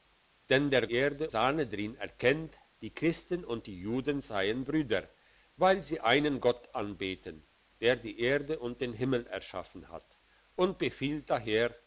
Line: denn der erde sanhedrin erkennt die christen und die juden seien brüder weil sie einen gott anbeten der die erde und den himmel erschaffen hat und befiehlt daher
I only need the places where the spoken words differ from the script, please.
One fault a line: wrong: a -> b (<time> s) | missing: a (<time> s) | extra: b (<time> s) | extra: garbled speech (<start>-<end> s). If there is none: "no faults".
no faults